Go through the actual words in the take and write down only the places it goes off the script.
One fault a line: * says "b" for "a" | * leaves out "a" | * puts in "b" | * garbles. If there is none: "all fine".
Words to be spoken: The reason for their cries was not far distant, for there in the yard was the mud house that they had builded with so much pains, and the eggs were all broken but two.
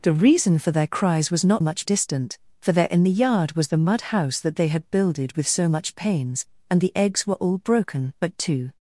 * says "much" for "far"